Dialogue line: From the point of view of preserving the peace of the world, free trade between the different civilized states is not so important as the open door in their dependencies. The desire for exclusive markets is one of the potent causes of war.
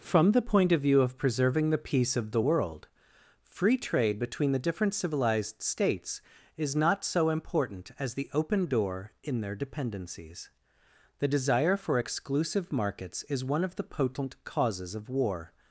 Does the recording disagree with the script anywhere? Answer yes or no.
no